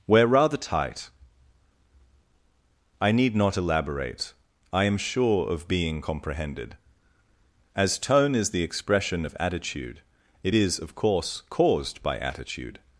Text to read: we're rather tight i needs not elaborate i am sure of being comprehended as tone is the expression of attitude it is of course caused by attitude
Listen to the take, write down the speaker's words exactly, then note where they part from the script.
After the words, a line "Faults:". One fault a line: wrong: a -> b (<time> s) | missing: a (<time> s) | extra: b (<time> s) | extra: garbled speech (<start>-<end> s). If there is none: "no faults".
we're rather tight i need not elaborate i am sure of being comprehended as tone is the expression of attitude it is of course caused by attitude
Faults:
wrong: needs -> need (3.1 s)